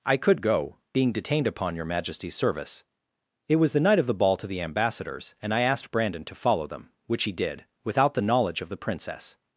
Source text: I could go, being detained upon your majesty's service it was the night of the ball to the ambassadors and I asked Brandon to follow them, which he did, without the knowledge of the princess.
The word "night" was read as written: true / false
true